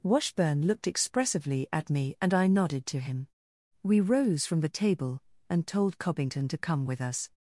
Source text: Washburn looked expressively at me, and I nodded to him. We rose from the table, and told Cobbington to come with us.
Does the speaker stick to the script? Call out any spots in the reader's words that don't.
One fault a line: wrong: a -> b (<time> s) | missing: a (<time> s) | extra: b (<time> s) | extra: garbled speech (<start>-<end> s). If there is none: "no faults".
no faults